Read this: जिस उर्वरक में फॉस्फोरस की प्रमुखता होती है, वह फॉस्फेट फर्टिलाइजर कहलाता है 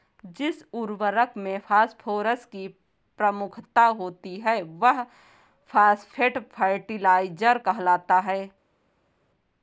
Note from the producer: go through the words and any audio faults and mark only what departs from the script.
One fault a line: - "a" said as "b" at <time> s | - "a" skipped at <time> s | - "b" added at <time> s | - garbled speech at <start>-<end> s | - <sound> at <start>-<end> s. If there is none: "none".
none